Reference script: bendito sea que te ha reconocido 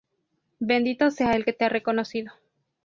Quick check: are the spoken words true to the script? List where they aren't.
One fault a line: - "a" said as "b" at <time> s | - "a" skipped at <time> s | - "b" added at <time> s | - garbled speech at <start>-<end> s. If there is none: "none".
- "el" added at 1.3 s